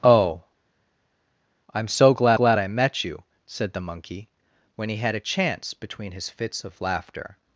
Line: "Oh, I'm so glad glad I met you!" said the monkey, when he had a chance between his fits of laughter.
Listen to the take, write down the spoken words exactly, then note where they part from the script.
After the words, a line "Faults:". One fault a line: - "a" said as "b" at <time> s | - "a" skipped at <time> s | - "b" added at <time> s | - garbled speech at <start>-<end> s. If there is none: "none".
"Oh, I'm so glad glad I met you!" said the monkey, when he had a chance between his fits of laughter.
Faults:
none